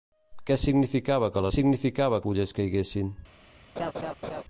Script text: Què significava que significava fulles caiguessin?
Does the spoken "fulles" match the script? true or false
true